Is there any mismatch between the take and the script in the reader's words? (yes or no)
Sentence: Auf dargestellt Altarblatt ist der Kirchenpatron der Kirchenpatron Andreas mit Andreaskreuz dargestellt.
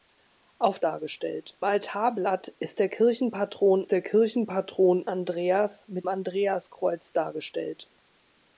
no